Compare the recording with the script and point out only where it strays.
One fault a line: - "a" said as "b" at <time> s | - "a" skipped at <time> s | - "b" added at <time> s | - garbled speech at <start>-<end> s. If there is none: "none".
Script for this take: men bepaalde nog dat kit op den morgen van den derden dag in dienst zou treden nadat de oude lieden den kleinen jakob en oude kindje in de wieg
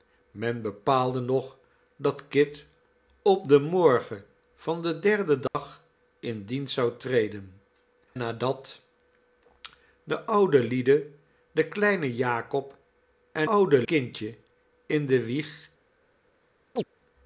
none